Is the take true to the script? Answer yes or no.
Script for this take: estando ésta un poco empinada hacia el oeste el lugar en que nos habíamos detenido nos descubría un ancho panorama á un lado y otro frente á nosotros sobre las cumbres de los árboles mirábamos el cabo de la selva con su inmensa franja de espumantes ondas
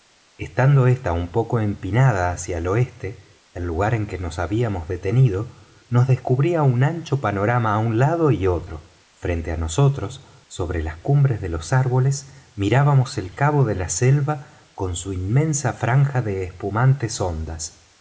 yes